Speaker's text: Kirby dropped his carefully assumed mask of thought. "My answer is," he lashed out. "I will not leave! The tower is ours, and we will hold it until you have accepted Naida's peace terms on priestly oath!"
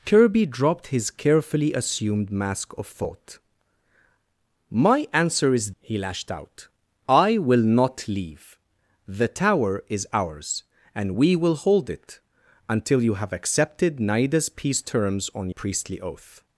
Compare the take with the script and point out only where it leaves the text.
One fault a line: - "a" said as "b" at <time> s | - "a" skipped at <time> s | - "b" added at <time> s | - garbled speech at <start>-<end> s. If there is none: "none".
none